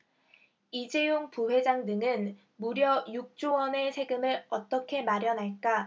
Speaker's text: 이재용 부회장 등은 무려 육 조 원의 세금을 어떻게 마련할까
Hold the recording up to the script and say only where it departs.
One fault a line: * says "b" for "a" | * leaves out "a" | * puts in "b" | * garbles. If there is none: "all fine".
all fine